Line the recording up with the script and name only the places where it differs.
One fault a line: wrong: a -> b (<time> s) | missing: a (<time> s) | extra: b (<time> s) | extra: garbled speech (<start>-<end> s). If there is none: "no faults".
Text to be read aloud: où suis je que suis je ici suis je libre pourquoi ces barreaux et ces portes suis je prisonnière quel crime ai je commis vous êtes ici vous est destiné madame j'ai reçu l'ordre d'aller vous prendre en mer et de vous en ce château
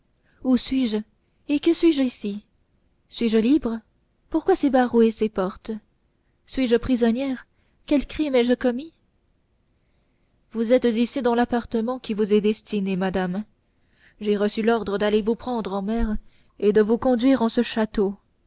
extra: et (1.5 s)
extra: dans l'appartement qui (11.2 s)
extra: conduire (17.0 s)